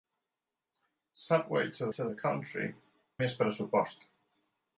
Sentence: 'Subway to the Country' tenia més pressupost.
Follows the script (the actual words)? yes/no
no